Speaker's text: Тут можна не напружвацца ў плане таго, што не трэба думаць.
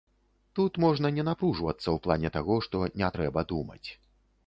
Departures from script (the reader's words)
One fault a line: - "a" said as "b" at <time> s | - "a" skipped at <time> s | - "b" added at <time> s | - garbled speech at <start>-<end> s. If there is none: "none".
none